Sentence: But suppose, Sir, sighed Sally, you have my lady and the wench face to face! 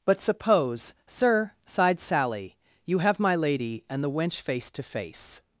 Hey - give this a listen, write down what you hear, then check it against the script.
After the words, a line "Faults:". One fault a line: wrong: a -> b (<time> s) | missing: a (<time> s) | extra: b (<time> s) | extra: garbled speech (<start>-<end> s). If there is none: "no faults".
But suppose, Sir, sighed Sally, you have my lady and the wench face to face!
Faults:
no faults